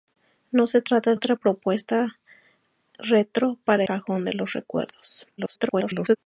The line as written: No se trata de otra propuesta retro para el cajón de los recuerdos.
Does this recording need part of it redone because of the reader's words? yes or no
yes